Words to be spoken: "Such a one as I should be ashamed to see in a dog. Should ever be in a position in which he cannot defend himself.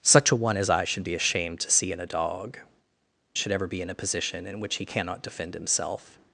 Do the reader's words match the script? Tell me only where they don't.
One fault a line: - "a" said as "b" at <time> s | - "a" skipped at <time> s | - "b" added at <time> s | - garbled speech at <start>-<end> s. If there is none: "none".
none